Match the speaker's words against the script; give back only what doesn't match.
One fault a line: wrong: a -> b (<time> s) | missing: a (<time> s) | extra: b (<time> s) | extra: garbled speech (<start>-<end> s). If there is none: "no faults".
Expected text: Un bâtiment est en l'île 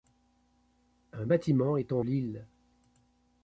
no faults